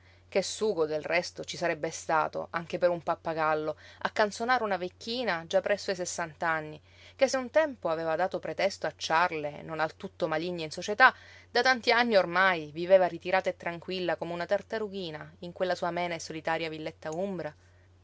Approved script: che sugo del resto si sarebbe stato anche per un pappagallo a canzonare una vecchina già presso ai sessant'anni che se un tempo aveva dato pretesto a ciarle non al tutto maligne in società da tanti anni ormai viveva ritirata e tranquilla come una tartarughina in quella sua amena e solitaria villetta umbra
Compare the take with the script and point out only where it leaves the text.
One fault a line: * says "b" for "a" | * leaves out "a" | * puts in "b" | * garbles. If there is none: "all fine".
* says "ci" for "si"